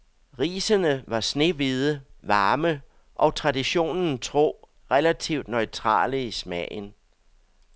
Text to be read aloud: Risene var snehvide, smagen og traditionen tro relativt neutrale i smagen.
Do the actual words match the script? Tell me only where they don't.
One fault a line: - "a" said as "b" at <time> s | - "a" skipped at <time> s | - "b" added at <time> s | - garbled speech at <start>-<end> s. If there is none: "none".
- "smagen" said as "varme" at 2.2 s